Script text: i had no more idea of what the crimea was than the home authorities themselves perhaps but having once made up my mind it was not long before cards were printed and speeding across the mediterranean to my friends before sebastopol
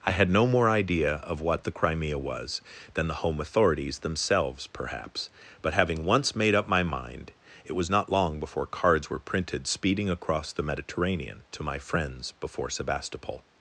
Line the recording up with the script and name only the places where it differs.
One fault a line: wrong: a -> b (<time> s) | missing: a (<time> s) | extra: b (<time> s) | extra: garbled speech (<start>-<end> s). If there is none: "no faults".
missing: and (9.6 s)